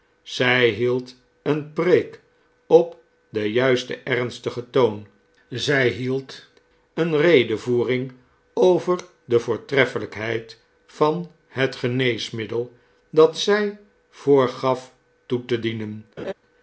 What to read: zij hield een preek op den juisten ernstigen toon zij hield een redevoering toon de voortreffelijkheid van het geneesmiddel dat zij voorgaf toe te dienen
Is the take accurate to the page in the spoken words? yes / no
no